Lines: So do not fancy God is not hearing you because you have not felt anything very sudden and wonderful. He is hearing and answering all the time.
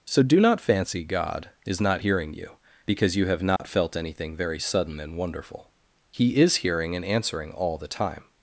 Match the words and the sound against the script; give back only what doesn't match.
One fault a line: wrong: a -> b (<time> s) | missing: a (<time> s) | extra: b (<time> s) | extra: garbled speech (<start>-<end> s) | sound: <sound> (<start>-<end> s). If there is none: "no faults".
sound: dropout (3.6-3.6 s)